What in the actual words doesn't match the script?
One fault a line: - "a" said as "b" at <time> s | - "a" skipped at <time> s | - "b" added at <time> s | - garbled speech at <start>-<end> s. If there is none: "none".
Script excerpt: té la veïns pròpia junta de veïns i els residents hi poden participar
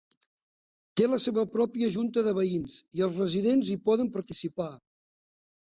- "veïns" said as "seva" at 1.2 s